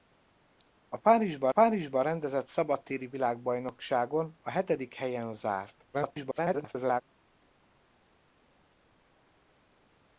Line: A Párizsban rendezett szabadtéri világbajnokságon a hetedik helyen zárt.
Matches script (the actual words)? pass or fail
fail